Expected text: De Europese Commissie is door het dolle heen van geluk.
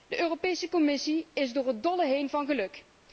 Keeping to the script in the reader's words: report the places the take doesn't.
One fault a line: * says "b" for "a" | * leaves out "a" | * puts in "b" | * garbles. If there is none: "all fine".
all fine